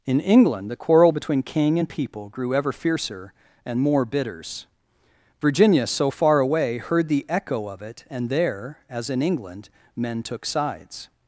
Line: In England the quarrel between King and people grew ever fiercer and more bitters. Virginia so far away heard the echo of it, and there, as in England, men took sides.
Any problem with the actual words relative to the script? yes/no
no